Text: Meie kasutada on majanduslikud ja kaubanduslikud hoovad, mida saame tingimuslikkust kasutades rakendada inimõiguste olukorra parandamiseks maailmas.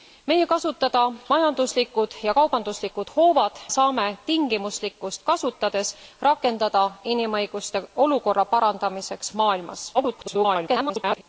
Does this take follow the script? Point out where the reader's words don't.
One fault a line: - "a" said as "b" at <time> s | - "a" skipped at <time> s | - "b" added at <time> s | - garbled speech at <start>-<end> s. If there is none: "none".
- "on" skipped at 1.0 s
- "mida" skipped at 3.6 s
- garbled speech at 9.9-11.2 s